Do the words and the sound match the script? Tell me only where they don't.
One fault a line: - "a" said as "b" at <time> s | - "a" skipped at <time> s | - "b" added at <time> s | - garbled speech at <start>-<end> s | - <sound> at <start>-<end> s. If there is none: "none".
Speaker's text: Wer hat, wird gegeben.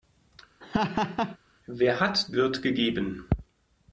- laugh at 0.6-1.4 s